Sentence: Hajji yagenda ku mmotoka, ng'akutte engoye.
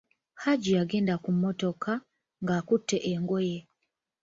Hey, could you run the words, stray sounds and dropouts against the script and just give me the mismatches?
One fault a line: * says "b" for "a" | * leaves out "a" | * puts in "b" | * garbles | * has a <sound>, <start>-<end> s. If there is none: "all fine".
all fine